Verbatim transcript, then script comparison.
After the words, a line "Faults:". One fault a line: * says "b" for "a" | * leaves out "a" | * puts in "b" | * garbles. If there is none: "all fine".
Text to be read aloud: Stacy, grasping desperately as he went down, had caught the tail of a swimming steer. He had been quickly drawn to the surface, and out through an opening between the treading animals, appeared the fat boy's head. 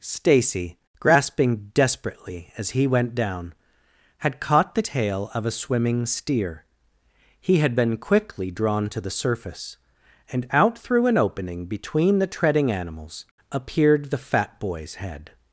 Stacy, grasping desperately as he went down, had caught the tail of a swimming steer. He had been quickly drawn to the surface, and out through an opening between the treading animals, appeared the fat boy's head.
Faults:
all fine